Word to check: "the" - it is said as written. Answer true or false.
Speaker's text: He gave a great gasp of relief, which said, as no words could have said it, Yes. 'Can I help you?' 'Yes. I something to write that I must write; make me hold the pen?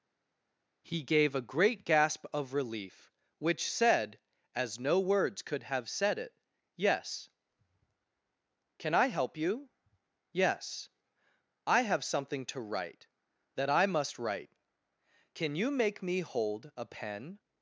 false